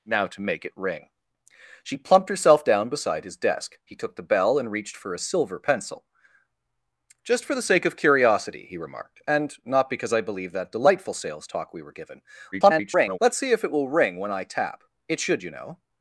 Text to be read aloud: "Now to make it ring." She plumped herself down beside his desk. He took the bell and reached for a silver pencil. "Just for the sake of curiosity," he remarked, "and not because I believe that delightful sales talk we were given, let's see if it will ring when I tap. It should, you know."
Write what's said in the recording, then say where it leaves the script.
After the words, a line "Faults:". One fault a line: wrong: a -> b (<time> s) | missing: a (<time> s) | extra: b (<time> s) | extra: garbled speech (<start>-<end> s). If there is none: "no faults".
"Now to make it ring." She plumped herself down beside his desk. He took the bell and reached for a silver pencil. "Just for the sake of curiosity," he remarked, "and not because I believe that delightful sales talk we were given, [garbled] let's see if it will ring when I tap. It should, you know."
Faults:
extra: garbled speech (12.5-13.2 s)